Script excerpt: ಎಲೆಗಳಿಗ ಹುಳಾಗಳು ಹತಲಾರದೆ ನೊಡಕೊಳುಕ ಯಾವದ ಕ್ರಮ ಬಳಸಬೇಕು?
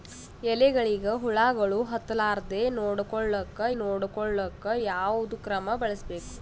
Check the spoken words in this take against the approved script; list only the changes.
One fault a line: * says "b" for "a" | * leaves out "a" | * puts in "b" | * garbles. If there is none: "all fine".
* puts in "ನೊಡಕೊಳುಕ"